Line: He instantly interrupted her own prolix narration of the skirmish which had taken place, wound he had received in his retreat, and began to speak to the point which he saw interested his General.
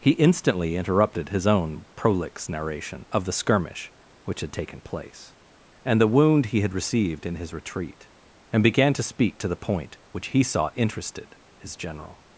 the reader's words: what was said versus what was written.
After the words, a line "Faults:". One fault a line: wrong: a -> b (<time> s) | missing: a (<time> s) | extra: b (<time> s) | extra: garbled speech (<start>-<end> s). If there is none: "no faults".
He instantly interrupted his own prolix narration of the skirmish which had taken place, and the wound he had received in his retreat, and began to speak to the point which he saw interested his General.
Faults:
wrong: her -> his (1.3 s)
extra: and the (5.8 s)